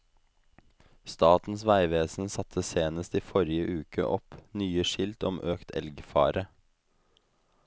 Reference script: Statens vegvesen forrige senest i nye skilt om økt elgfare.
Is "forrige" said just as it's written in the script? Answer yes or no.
no